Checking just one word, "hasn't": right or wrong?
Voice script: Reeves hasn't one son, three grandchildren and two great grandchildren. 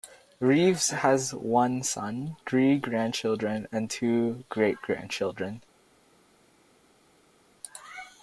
wrong